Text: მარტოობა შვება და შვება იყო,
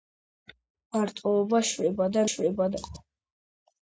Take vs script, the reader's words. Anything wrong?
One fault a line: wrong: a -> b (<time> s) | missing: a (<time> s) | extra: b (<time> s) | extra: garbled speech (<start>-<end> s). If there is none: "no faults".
no faults